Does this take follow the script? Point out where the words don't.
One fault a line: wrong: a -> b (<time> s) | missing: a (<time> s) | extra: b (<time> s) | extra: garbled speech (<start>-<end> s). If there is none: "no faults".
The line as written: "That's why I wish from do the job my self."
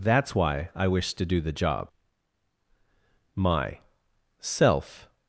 wrong: from -> to (1.1 s)